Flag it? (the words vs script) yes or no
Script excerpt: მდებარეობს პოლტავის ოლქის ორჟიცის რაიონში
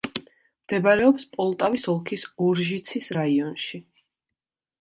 no